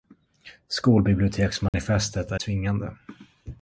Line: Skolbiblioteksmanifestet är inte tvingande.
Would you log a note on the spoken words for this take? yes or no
yes